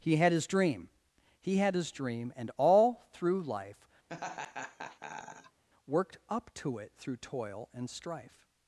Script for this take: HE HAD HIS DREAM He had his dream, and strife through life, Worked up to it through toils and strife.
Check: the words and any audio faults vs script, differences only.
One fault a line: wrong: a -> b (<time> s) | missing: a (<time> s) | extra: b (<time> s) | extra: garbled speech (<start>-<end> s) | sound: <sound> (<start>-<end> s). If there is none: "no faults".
wrong: strife -> all (2.6 s)
sound: laugh (4.1-5.6 s)
wrong: toils -> toil (7.2 s)